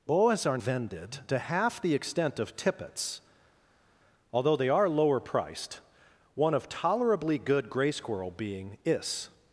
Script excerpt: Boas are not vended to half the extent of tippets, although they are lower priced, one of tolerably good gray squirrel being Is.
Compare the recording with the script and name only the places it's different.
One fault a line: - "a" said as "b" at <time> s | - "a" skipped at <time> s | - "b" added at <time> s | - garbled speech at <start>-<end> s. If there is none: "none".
- "not" skipped at 0.6 s